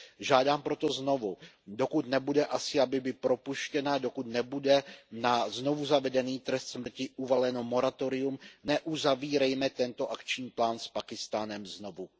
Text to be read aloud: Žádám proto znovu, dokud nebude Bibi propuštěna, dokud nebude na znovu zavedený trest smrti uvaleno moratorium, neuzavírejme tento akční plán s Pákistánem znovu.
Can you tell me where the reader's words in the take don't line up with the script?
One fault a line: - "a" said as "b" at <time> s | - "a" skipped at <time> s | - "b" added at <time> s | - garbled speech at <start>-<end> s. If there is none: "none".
- "Asia" added at 2.5 s